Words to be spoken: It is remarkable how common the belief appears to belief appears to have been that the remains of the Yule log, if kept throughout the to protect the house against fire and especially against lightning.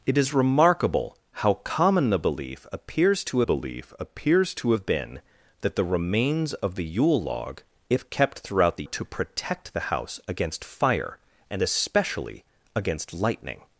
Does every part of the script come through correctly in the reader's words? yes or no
yes